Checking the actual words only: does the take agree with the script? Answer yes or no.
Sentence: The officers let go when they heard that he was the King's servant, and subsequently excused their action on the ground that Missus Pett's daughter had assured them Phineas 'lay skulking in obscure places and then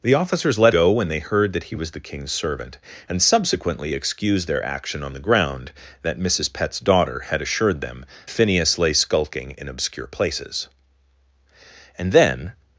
yes